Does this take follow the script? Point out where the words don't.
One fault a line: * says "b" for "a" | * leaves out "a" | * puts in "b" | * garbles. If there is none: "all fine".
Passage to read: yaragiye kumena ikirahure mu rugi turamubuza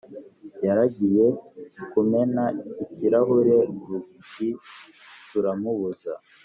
* leaves out "mu"